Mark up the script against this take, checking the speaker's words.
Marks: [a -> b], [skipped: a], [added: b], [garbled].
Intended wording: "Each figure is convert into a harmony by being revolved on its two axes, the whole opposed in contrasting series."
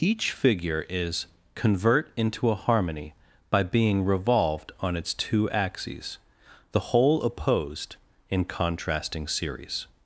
"Each figure is convert into a harmony by being revolved on its two axes, the whole opposed in contrasting series."